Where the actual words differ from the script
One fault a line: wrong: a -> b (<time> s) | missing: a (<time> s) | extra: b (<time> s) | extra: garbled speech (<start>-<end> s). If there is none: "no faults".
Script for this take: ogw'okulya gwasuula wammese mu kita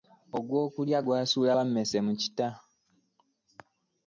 no faults